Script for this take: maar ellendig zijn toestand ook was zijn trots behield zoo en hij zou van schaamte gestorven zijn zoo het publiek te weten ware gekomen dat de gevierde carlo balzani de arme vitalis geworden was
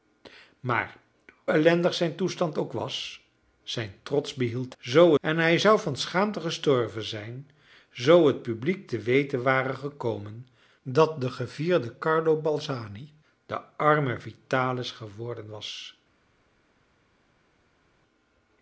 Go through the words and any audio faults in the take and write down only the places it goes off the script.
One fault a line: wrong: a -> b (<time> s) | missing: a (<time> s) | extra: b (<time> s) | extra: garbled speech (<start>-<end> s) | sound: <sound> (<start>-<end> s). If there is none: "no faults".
no faults